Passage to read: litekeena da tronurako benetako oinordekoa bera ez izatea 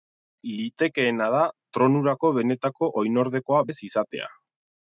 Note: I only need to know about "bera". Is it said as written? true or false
false